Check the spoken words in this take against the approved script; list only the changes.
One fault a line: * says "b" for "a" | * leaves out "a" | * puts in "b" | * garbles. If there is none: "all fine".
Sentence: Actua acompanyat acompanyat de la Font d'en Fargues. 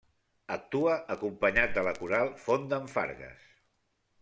* leaves out "acompanyat"
* puts in "Coral"